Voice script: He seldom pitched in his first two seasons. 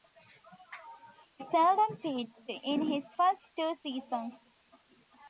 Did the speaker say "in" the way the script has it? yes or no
yes